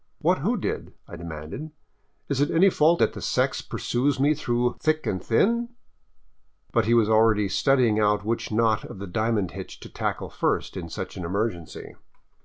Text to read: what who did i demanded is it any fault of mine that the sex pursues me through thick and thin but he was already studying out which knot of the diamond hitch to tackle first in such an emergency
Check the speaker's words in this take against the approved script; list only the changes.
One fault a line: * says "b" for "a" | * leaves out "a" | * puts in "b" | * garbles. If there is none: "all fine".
* leaves out "of mine"